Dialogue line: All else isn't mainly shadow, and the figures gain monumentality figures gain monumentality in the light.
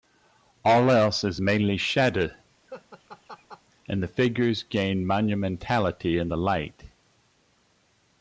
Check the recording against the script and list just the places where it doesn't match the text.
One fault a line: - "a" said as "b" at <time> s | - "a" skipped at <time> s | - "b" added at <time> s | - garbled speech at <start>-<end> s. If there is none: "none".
- "isn't" said as "is" at 1.2 s
- "figures gain monumentality" skipped at 6.2 s